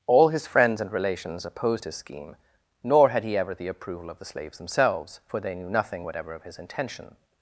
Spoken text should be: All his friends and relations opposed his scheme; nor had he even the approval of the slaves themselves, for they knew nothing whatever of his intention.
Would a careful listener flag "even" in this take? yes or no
yes